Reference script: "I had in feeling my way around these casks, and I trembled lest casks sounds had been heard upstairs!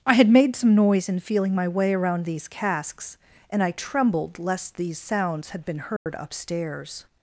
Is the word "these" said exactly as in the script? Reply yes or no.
yes